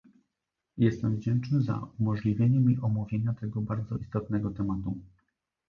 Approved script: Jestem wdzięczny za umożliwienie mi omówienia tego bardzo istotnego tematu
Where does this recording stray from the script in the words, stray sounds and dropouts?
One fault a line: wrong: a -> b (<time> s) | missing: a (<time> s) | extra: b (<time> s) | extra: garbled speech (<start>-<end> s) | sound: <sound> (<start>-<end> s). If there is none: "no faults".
no faults